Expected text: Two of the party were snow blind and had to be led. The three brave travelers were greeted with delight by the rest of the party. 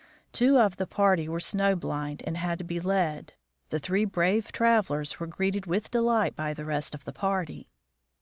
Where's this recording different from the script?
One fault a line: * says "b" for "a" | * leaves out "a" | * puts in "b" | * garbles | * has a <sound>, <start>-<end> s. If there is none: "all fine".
all fine